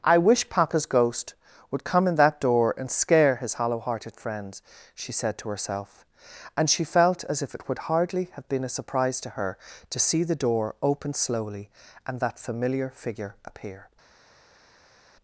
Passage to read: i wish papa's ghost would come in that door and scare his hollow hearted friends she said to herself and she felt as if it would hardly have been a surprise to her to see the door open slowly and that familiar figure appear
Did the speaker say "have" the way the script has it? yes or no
yes